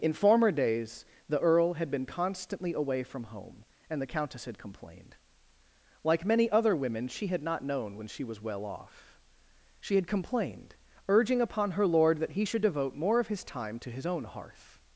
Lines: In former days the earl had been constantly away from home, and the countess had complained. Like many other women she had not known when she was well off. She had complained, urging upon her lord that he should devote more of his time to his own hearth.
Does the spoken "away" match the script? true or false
true